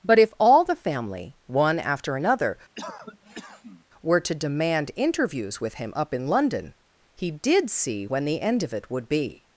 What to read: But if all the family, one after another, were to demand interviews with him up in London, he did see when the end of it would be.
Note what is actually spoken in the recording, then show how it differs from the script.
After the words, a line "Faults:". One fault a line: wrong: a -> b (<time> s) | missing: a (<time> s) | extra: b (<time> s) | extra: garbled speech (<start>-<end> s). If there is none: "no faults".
But if all the family, one after another, were to demand interviews with him up in London, he did see when the end of it would be.
Faults:
no faults